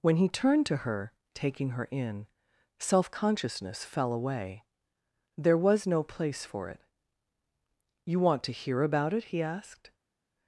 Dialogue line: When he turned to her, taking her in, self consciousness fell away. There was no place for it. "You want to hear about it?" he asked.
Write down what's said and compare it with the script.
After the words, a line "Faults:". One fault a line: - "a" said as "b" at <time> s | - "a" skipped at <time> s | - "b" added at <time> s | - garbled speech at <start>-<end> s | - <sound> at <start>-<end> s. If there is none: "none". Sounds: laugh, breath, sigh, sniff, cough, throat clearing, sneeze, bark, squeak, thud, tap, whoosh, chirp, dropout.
When he turned to her, taking her in, self consciousness fell away. There was no place for it. "You want to hear about it?" he asked.
Faults:
none